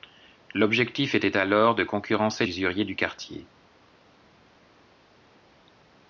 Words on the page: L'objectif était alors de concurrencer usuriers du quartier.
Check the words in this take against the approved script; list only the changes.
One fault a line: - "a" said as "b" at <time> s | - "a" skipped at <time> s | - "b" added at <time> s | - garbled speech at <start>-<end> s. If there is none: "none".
none